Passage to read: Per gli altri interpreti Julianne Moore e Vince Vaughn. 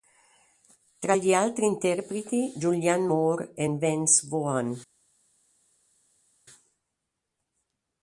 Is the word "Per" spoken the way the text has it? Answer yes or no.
no